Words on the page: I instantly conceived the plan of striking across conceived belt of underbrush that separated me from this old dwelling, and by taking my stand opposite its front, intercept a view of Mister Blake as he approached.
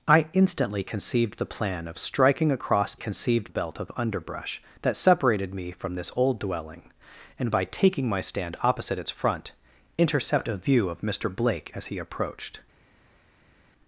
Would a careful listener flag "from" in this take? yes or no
no